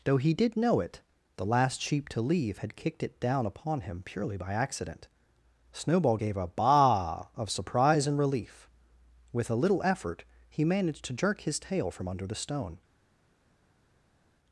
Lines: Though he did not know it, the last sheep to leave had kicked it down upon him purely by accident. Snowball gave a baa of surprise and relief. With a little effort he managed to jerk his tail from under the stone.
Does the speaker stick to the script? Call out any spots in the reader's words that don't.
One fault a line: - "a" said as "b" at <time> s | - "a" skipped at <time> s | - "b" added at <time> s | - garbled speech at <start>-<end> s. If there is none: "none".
- "not" skipped at 0.6 s